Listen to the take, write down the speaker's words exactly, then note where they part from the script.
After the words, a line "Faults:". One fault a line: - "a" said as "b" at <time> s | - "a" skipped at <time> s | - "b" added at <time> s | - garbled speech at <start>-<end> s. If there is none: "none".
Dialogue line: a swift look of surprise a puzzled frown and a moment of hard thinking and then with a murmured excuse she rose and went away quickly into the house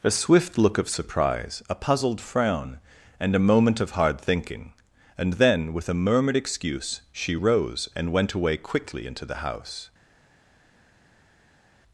a swift look of surprise a puzzled frown and a moment of hard thinking and then with a murmured excuse she rose and went away quickly into the house
Faults:
none